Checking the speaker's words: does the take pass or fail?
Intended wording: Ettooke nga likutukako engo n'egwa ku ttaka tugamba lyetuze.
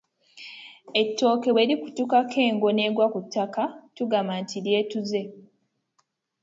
fail